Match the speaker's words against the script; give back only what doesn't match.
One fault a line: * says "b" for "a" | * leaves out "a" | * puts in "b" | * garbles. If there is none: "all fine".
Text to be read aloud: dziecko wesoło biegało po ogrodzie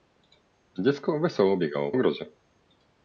* leaves out "po"